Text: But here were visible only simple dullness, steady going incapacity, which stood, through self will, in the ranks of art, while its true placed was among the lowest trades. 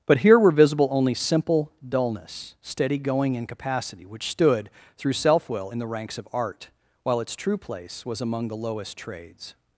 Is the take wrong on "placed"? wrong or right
wrong